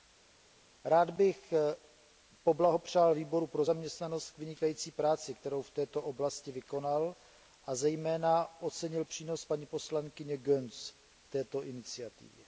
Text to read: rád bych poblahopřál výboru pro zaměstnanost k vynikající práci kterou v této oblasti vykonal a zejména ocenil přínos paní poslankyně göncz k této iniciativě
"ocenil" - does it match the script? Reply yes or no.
yes